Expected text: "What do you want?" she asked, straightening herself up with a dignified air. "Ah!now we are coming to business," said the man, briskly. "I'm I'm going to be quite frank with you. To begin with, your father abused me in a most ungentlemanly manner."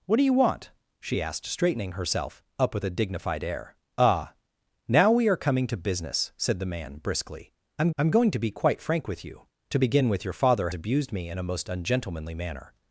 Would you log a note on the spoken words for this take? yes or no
no